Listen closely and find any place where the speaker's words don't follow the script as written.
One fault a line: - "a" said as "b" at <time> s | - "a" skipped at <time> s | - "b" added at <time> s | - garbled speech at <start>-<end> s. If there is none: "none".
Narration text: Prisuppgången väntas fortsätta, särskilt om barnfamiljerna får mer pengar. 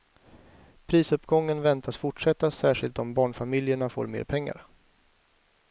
none